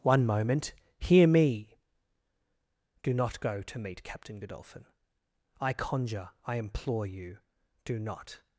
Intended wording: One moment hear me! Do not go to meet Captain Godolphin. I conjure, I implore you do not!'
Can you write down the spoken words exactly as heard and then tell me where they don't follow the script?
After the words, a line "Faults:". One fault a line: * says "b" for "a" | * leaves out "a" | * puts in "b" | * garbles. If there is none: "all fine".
One moment hear me! Do not go to meet Captain Godolphin. I conjure, I implore you do not!'
Faults:
all fine